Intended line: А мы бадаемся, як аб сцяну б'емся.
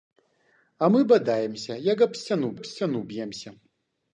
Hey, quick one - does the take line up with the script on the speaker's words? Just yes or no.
no